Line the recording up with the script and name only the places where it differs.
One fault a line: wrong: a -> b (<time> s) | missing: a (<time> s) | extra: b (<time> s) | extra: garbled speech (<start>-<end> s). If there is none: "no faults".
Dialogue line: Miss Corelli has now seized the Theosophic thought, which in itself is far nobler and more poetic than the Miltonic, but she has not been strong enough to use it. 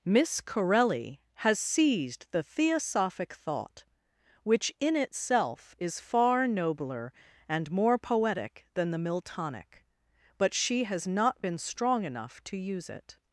missing: now (1.6 s)